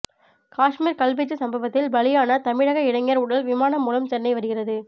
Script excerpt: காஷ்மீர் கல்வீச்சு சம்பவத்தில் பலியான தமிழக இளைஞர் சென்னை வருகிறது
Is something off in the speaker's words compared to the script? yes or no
yes